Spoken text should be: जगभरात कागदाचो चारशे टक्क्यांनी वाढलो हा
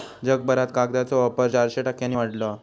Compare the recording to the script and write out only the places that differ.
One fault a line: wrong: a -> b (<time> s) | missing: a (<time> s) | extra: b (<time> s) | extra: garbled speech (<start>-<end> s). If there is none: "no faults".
extra: वापर (1.2 s)